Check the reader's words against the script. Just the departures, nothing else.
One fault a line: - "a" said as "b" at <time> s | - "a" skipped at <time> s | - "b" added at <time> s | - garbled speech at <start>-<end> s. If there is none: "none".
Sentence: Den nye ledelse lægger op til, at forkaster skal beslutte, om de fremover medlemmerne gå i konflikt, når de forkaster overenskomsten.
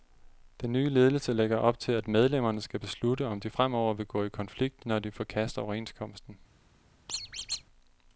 - "forkaster" said as "medlemmerne" at 2.1 s
- "medlemmerne" said as "vil" at 3.9 s